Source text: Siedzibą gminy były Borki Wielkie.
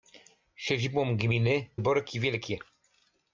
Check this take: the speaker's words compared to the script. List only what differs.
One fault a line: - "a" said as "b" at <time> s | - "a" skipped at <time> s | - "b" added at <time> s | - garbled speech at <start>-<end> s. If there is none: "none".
- "były" skipped at 1.7 s